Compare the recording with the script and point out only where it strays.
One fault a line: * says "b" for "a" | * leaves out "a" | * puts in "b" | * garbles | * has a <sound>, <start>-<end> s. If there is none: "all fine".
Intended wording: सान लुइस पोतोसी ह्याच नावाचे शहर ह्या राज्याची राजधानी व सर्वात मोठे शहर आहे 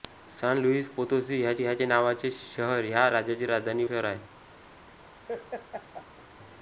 * puts in "ह्याच"
* leaves out "व सर्वात मोठे"
* has a laugh, 5.3-6.3 s